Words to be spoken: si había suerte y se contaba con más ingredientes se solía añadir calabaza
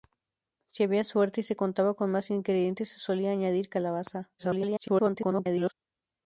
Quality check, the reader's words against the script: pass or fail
fail